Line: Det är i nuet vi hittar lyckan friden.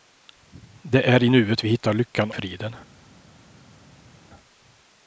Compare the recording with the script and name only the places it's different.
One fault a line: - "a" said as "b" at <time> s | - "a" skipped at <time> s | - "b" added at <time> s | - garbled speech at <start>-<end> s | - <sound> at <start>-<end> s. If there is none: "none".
none